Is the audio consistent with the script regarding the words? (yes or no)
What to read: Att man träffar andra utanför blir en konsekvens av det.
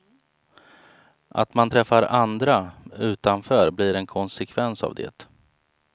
yes